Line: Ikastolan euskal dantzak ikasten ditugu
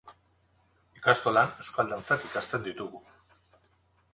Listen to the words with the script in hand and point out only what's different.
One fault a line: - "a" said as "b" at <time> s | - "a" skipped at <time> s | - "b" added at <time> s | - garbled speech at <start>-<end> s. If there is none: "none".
none